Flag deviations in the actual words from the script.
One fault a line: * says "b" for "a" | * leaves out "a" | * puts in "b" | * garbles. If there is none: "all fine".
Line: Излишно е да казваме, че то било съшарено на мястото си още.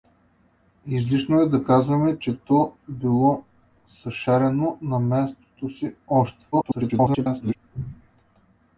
* garbles